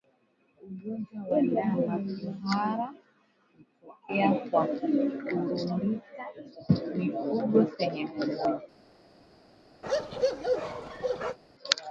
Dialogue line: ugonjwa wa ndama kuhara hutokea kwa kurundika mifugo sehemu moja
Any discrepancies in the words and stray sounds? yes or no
yes